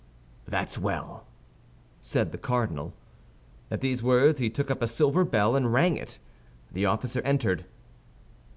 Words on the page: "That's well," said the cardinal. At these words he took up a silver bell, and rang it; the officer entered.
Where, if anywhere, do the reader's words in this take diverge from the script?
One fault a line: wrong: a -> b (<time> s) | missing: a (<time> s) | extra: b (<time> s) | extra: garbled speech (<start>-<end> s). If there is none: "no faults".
no faults